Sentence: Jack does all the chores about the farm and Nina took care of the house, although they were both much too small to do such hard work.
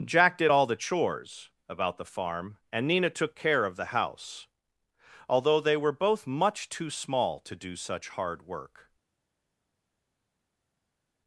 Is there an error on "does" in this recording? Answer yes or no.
yes